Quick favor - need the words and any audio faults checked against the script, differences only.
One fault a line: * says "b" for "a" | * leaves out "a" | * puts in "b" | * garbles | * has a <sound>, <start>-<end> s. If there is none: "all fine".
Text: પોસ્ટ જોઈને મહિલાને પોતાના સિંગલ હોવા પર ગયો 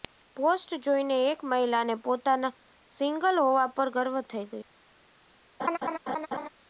* puts in "એક"
* puts in "ગર્વ થઈ"
* has a laugh, 5.6-6.5 s